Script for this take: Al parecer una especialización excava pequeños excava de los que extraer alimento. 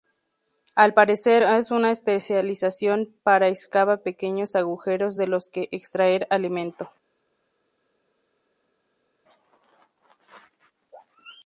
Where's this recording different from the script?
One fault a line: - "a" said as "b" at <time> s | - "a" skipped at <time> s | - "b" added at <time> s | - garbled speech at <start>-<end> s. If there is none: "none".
- "es" added at 1.4 s
- "para" added at 3.2 s
- "excava" said as "agujeros" at 4.5 s